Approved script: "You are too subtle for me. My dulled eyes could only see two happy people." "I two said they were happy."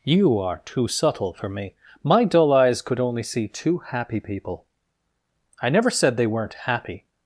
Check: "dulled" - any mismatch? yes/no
yes